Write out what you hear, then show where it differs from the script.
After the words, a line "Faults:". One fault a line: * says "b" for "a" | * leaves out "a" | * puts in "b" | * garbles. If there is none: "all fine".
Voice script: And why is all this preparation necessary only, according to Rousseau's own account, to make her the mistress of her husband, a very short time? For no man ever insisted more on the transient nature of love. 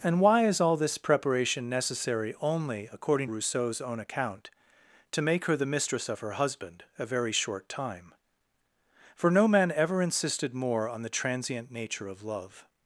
And why is all this preparation necessary only, according Rousseau's own account, to make her the mistress of her husband, a very short time? For no man ever insisted more on the transient nature of love.
Faults:
* leaves out "to"